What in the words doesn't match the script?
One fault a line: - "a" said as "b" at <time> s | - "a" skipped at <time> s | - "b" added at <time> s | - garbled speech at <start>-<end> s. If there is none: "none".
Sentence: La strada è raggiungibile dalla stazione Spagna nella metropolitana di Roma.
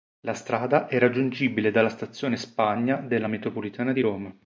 - "nella" said as "della" at 3.0 s